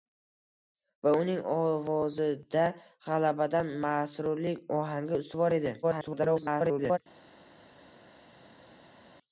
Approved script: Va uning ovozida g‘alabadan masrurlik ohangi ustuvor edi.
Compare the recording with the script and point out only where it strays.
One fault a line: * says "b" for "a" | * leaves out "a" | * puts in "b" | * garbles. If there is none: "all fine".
* garbles